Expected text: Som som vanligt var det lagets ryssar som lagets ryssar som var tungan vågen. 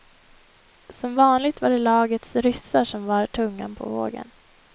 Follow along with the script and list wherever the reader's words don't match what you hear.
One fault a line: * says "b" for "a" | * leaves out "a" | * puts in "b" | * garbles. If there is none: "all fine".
* leaves out "som"
* leaves out "lagets ryssar som"
* puts in "på"